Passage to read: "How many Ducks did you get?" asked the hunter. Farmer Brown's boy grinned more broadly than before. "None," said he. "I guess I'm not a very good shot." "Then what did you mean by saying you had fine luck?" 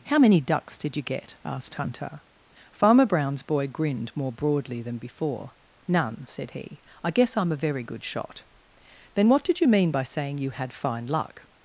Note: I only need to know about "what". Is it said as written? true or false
true